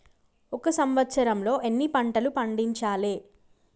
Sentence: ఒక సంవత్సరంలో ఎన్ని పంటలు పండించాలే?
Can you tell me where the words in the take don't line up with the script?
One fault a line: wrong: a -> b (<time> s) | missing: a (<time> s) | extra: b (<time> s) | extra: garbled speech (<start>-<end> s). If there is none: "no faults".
no faults